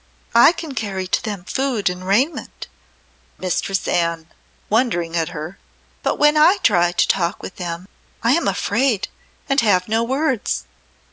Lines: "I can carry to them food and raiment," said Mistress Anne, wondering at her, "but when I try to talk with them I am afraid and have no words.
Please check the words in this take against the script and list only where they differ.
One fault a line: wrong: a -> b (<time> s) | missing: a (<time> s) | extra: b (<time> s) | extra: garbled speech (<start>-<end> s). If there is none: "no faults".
missing: said (2.7 s)